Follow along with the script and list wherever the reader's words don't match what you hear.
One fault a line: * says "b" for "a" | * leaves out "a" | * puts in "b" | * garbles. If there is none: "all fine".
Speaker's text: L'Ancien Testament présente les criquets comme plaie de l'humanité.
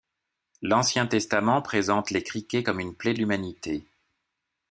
* puts in "une"